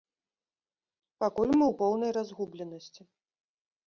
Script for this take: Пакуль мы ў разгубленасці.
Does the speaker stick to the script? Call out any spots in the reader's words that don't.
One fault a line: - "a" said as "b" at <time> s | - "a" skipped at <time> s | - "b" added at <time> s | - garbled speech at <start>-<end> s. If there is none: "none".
- "поўнай" added at 1.8 s